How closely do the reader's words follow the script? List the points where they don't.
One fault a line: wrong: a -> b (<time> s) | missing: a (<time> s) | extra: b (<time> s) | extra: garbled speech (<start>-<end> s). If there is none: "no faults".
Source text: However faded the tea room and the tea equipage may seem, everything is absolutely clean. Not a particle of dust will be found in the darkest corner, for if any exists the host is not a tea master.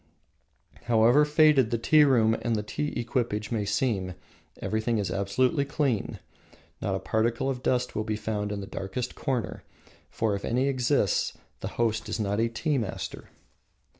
no faults